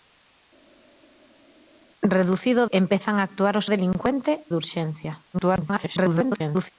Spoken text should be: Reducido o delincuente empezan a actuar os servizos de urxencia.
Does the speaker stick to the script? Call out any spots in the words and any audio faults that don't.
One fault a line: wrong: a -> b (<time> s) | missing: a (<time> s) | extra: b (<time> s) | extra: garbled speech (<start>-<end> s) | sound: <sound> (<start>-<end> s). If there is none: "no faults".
missing: delincuente (2.7 s)
wrong: servizos -> delincuente (3.7 s)
extra: garbled speech (5.3-6.7 s)